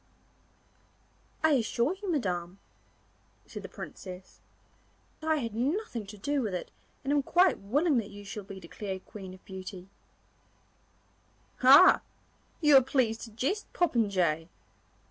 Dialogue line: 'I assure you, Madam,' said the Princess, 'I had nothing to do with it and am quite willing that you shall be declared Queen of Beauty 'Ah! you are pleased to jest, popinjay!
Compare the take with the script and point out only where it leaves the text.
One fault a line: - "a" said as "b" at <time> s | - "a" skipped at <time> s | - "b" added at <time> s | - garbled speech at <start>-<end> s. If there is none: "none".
none